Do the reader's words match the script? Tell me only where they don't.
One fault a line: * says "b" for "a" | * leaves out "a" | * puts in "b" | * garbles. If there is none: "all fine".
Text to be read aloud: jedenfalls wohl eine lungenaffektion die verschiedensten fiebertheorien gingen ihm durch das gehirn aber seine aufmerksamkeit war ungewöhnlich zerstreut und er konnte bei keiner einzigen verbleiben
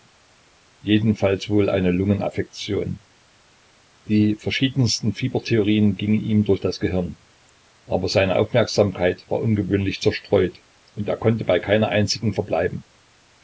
all fine